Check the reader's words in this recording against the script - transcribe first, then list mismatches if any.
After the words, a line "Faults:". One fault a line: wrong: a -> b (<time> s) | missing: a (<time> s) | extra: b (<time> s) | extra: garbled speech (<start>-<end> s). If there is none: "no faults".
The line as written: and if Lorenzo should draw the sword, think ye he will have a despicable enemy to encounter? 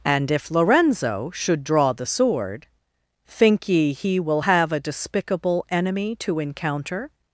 and if Lorenzo should draw the sword, think ye he will have a despicable enemy to encounter?
Faults:
no faults